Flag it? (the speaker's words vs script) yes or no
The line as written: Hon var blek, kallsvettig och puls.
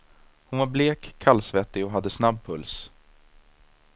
yes